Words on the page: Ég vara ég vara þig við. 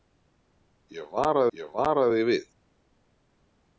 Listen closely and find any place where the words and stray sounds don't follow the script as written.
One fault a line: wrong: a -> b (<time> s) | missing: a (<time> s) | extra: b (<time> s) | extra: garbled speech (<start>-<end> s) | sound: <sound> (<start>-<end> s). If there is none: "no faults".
no faults